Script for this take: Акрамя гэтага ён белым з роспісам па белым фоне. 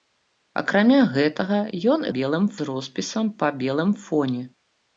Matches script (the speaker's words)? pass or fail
pass